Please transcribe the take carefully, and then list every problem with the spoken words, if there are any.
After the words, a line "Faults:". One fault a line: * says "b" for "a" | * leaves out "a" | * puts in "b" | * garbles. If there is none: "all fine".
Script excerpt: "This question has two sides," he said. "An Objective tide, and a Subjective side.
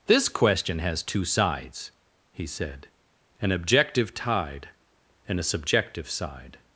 "This question has two sides," he said. "An Objective tide, and a Subjective side.
Faults:
all fine